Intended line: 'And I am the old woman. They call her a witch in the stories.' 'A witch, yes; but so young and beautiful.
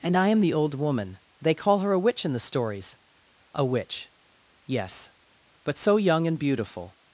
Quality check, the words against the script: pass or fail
pass